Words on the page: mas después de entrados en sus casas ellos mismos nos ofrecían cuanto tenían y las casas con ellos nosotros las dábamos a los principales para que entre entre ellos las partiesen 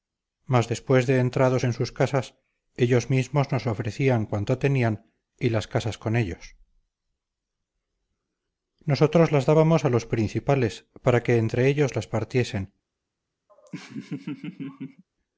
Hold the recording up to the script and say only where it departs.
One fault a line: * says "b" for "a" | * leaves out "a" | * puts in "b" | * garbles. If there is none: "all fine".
* leaves out "entre"